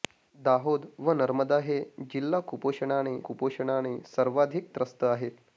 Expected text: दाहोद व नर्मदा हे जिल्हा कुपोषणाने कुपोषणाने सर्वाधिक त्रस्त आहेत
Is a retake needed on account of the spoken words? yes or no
no